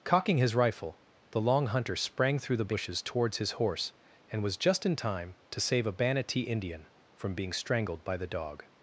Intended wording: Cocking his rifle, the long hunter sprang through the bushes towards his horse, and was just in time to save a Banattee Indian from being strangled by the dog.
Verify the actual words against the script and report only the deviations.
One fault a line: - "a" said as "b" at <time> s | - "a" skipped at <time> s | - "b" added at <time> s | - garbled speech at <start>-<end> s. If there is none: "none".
none